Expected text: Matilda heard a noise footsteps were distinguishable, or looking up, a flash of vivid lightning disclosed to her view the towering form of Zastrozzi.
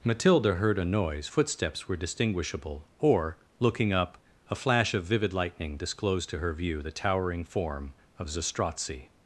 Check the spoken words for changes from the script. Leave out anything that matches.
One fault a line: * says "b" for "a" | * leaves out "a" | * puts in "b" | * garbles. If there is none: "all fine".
all fine